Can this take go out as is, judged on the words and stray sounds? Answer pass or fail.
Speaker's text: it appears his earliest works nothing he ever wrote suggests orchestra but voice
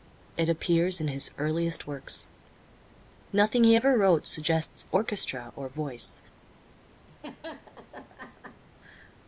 fail